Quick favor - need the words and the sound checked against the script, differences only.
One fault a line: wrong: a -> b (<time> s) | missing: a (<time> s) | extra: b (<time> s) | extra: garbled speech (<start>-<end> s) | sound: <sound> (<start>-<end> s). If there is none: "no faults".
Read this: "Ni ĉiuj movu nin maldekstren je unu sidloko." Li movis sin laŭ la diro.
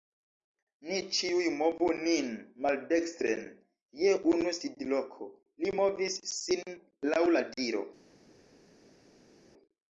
no faults